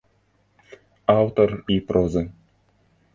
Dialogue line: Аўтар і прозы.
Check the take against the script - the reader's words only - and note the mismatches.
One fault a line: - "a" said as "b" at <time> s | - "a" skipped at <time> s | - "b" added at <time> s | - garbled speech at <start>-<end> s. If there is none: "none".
none